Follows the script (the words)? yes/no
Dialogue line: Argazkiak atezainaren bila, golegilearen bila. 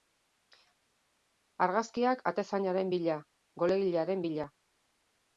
yes